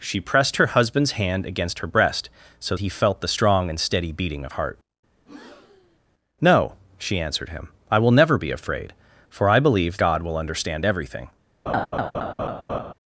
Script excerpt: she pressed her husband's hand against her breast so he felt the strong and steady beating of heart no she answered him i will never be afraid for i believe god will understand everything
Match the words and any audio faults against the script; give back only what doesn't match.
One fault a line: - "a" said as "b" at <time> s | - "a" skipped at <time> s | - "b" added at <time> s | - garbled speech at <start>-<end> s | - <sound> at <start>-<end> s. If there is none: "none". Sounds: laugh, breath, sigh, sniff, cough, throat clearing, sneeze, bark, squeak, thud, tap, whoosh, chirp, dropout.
- breath at 5.2-6.0 s
- laugh at 11.7-12.9 s